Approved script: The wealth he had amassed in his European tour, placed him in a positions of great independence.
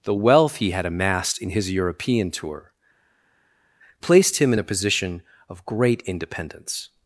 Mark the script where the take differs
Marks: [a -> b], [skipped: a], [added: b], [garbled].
The wealth he had amassed in his European tour, placed him in a [positions -> position] of great independence.